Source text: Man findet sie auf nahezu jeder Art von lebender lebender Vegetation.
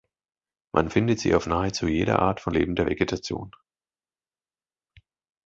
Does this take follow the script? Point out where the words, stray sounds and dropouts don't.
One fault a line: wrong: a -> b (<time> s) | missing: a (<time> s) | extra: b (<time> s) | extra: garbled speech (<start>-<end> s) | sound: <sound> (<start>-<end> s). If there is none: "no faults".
missing: lebender (2.9 s)